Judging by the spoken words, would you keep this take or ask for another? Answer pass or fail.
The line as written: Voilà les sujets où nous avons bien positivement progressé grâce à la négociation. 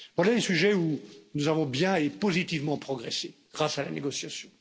fail